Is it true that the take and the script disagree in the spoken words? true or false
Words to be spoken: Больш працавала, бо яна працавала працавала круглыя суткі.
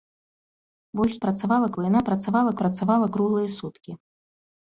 false